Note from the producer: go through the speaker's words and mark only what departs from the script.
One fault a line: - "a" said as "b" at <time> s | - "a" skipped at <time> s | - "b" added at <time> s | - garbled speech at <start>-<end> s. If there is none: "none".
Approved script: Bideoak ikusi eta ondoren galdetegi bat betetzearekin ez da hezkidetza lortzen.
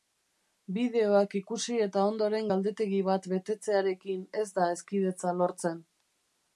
none